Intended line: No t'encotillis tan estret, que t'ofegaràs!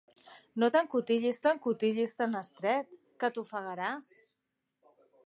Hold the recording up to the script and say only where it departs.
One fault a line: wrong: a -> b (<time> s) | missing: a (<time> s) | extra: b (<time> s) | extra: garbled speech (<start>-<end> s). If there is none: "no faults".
extra: t'encotillis (1.5 s)